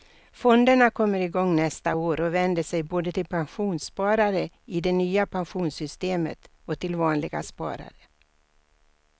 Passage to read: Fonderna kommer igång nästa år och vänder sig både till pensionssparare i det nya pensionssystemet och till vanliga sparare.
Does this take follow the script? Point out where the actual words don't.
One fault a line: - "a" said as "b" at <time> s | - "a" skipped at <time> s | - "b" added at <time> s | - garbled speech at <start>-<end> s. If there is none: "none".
none